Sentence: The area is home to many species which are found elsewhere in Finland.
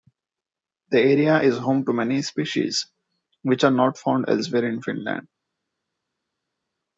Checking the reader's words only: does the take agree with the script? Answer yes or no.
no